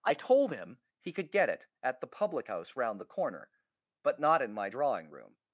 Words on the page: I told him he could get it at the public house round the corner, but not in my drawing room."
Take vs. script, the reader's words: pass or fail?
pass